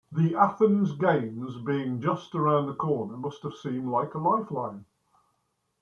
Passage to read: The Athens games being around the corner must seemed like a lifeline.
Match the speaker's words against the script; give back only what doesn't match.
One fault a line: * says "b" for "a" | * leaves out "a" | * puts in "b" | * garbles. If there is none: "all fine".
* puts in "just"
* puts in "have"